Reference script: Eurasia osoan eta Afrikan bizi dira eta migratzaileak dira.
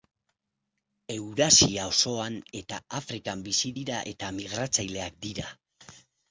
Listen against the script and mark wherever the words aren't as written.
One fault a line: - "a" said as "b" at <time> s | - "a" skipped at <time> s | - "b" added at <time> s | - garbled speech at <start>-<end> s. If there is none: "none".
none